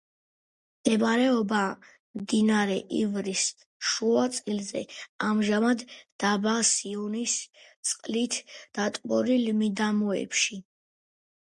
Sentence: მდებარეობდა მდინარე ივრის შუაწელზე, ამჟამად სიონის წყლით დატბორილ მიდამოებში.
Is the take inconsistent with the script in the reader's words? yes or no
yes